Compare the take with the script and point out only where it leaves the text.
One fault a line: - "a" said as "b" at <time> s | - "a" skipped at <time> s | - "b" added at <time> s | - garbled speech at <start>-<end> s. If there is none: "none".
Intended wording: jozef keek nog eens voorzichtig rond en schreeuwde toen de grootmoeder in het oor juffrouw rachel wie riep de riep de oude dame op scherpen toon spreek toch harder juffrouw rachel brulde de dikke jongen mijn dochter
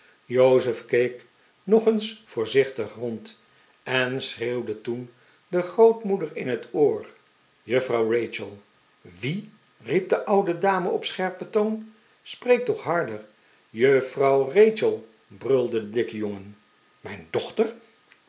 - "riep de" skipped at 10.2 s